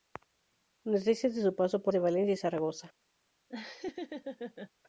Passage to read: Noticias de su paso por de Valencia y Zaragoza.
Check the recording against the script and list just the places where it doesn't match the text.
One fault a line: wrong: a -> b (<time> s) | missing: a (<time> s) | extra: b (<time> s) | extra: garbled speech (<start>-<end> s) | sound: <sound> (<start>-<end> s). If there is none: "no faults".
sound: laugh (3.5-4.7 s)